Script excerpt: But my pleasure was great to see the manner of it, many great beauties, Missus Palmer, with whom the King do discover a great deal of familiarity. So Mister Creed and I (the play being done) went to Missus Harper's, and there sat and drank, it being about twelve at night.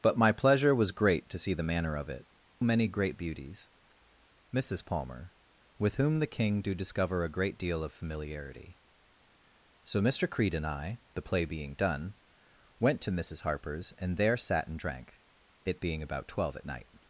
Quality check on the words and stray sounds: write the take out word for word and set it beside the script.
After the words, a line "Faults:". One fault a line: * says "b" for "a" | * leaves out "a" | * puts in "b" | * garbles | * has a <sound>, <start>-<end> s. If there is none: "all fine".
But my pleasure was great to see the manner of it, many great beauties, Missus Palmer, with whom the King do discover a great deal of familiarity. So Mister Creed and I (the play being done) went to Missus Harper's, and there sat and drank, it being about twelve at night.
Faults:
all fine